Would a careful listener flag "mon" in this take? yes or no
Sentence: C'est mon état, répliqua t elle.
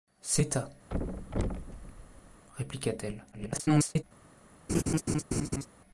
yes